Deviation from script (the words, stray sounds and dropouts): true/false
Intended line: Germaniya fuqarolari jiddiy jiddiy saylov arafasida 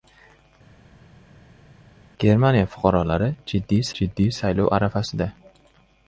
false